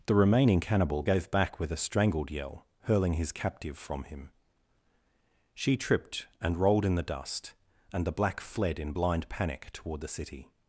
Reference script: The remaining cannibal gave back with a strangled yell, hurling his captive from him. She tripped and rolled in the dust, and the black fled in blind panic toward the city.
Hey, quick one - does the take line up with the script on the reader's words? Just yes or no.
yes